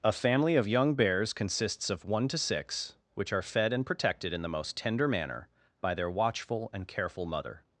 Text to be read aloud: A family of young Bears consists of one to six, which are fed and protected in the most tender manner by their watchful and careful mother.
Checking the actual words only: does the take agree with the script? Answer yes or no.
yes